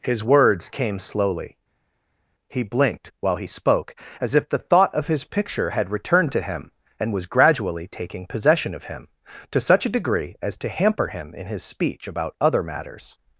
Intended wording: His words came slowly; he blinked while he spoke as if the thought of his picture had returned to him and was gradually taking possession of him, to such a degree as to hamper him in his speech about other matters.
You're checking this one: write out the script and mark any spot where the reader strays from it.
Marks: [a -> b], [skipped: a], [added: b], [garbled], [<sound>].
His words came slowly; he blinked while he spoke as if the thought of his picture had returned to him and was gradually taking possession of him, to such a degree as to hamper him in his speech about other matters.